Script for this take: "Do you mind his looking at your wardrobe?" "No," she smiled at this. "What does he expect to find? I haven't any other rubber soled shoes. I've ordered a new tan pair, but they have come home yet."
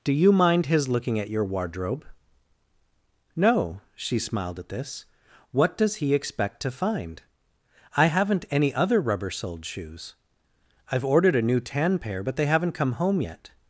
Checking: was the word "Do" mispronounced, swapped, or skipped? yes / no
no